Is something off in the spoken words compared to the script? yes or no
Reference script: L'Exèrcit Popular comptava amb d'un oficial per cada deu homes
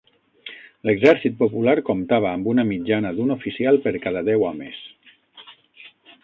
yes